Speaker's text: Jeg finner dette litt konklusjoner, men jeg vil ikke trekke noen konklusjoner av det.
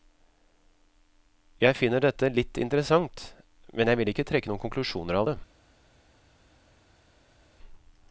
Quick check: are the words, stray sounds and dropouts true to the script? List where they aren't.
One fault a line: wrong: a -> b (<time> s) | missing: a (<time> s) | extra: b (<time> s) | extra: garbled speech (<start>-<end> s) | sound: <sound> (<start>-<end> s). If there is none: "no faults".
wrong: konklusjoner -> interessant (2.6 s)